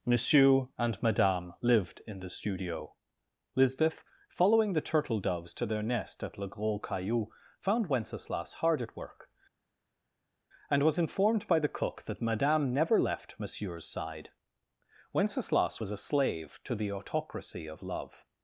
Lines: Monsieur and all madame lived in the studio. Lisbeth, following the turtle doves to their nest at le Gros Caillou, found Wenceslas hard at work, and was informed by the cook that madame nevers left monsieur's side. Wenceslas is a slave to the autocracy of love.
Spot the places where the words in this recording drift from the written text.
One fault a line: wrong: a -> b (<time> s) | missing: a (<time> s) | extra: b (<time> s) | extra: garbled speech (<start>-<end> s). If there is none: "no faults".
missing: all (1.0 s)
wrong: nevers -> never (12.7 s)
wrong: is -> was (15.8 s)